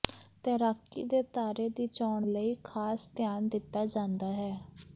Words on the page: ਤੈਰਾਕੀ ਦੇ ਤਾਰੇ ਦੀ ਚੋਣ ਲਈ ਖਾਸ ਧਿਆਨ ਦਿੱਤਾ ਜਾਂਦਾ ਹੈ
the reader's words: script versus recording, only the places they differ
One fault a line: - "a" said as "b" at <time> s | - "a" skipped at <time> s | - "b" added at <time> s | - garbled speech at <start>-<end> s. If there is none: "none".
none